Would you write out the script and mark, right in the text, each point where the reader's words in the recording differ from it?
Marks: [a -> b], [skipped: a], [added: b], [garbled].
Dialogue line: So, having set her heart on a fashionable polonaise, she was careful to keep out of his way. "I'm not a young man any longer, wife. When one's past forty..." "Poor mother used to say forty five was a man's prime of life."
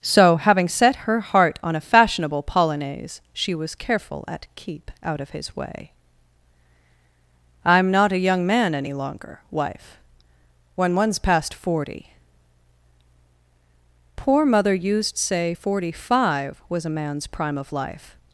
So, having set her heart on a fashionable polonaise, she was careful [to -> at] keep out of his way. "I'm not a young man any longer, wife. When one's past forty..." "Poor mother used [skipped: to] say forty five was a man's prime of life."